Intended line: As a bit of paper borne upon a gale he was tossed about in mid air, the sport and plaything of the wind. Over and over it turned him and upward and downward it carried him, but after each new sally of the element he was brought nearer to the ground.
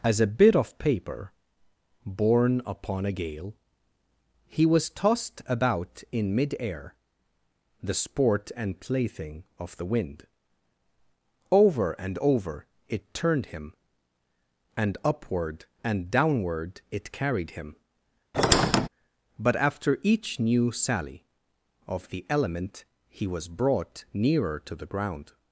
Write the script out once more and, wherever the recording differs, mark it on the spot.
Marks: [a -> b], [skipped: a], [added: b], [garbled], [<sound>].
As a bit of paper borne upon a gale he was tossed about in mid air, the sport and plaything of the wind. Over and over it turned him and upward and downward it carried him, [squeak] but after each new sally of the element he was brought nearer to the ground.